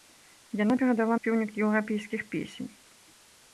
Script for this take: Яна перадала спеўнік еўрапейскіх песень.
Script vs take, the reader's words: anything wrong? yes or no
no